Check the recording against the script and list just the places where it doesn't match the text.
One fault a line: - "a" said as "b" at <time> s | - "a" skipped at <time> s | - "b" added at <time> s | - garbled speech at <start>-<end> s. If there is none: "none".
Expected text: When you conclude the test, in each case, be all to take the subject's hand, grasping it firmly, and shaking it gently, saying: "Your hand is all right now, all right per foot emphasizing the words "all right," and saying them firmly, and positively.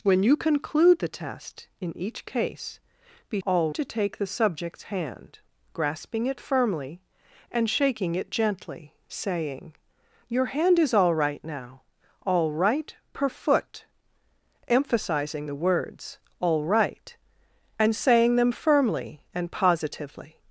none